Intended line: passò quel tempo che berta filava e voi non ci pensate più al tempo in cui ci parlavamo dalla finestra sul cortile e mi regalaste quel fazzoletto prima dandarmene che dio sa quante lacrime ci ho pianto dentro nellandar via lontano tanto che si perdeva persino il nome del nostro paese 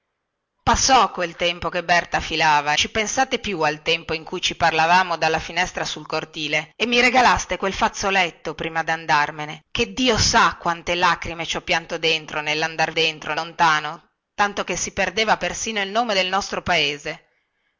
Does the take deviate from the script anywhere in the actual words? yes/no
yes